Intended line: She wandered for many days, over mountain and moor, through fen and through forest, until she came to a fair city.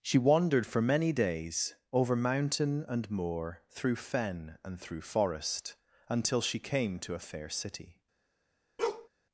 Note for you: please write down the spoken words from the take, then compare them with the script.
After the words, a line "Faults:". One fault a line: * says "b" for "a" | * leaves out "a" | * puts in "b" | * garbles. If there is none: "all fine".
She wandered for many days, over mountain and moor, through fen and through forest, until she came to a fair city.
Faults:
all fine